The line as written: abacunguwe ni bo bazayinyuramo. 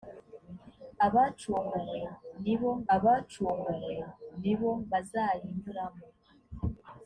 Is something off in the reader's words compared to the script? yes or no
yes